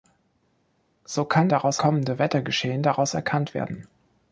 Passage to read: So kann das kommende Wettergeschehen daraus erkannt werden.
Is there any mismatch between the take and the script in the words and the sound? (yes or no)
yes